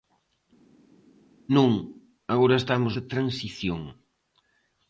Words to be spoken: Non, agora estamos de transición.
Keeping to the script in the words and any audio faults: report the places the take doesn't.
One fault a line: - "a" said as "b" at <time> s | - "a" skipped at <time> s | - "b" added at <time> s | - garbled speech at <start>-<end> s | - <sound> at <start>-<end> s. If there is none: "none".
none